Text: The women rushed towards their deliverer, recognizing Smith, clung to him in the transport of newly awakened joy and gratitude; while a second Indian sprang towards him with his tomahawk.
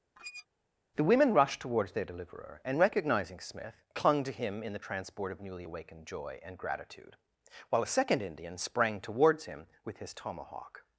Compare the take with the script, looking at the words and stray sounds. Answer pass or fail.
fail